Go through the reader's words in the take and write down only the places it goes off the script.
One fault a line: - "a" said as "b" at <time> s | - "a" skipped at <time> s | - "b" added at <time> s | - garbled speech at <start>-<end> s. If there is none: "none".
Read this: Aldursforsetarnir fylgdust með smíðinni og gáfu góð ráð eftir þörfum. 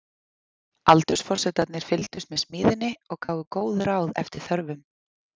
none